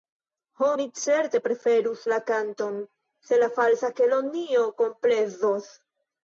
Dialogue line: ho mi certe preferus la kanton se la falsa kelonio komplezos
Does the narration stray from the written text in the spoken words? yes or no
no